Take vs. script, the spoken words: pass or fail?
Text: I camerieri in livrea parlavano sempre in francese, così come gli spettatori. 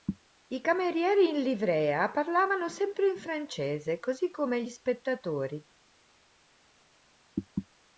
pass